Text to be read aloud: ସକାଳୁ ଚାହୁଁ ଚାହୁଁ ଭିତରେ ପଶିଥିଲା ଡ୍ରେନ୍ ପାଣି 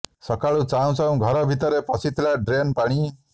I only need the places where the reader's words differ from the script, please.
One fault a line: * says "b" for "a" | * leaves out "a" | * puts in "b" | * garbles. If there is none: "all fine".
* puts in "ଘର"